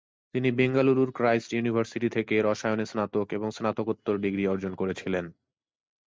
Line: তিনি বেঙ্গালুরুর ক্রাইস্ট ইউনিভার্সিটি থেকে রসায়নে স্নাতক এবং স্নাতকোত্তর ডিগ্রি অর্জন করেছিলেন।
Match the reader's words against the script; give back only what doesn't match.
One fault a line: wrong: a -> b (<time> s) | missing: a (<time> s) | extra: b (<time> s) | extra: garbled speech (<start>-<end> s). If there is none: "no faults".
no faults